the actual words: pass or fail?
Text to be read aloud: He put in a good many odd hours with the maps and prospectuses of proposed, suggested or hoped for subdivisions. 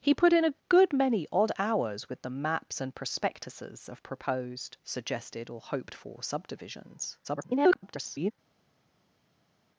fail